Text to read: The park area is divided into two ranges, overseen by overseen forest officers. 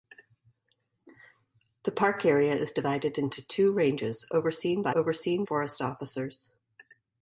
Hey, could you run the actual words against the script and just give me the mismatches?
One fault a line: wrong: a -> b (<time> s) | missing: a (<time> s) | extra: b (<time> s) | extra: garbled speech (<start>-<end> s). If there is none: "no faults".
no faults